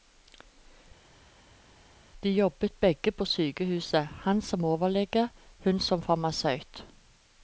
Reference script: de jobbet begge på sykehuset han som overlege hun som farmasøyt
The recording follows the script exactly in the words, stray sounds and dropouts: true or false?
true